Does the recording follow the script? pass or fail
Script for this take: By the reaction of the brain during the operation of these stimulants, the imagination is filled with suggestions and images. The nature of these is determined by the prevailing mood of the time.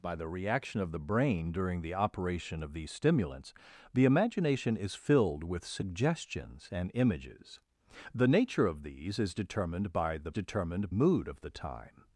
fail